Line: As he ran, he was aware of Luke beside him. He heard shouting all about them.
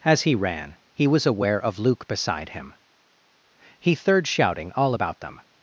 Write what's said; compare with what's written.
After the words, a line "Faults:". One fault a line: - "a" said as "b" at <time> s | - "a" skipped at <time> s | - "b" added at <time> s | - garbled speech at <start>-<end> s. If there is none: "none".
As he ran, he was aware of Luke beside him. He third shouting all about them.
Faults:
- "heard" said as "third" at 4.0 s